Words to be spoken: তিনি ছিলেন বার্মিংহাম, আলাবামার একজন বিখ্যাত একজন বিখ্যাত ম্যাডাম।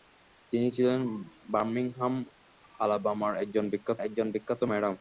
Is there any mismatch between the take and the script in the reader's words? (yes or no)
no